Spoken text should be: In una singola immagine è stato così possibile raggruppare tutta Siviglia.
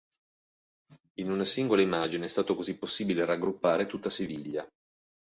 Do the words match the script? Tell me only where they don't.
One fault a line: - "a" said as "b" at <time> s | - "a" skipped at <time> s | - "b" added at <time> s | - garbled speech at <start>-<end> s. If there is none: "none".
none